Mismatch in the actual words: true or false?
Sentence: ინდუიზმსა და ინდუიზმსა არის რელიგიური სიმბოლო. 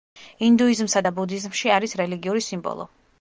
true